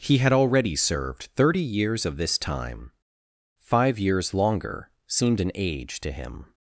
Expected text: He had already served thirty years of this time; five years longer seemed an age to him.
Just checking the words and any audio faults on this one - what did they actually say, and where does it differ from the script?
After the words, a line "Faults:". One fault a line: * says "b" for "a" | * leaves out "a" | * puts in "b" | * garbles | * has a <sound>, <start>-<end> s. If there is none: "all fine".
He had already served thirty years of this time; five years longer seemed an age to him.
Faults:
all fine